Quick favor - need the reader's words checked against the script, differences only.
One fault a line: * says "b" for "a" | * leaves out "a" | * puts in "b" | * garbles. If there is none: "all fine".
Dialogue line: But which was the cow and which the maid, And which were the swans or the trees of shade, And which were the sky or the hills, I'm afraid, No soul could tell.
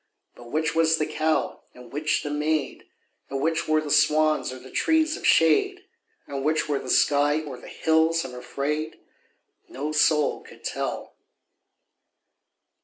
all fine